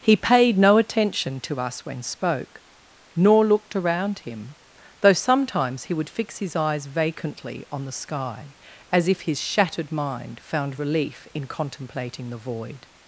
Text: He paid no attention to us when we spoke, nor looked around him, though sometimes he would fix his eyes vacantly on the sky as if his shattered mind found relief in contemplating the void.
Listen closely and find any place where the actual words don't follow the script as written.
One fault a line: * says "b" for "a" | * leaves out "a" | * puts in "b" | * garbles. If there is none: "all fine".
* leaves out "we"